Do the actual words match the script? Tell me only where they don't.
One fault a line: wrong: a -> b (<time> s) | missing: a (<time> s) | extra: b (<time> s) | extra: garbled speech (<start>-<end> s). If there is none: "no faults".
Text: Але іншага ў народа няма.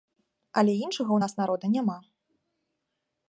extra: нас (1.2 s)